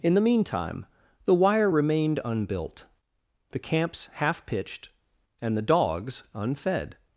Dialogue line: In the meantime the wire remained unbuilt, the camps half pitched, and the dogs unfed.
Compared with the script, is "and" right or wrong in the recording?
right